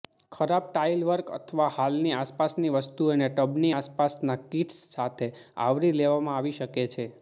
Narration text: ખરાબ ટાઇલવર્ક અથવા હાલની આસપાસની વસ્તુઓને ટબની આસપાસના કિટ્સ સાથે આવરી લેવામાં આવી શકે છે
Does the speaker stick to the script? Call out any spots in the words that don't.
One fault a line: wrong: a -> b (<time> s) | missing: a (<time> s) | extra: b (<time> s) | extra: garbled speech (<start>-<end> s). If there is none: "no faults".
no faults